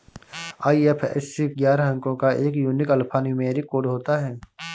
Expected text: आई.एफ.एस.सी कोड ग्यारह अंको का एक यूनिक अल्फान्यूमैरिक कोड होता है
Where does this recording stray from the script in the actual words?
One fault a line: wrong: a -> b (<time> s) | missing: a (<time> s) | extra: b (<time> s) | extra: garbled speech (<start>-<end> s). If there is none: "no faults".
missing: कोड (1.5 s)